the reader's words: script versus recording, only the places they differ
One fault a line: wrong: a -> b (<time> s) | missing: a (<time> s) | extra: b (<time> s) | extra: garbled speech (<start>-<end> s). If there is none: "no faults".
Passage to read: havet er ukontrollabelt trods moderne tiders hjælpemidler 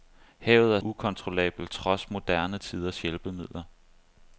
no faults